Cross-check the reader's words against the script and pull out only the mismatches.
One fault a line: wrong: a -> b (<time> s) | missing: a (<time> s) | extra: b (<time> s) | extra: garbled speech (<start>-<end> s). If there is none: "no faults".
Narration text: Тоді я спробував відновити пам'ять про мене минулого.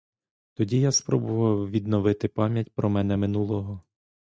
no faults